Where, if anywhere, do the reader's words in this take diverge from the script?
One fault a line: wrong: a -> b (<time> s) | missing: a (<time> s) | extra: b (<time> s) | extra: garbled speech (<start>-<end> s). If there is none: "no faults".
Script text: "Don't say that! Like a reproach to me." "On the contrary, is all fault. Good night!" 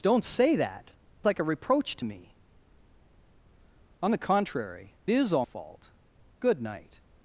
no faults